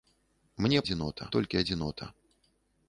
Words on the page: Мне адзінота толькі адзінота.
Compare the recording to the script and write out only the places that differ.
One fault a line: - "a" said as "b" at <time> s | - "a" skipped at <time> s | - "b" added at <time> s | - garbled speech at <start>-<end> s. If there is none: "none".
none